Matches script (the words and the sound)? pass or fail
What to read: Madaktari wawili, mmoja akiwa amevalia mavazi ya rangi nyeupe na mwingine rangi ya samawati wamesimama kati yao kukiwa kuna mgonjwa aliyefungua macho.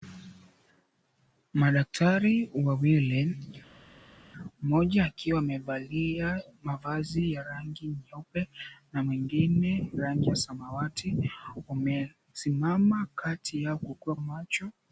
fail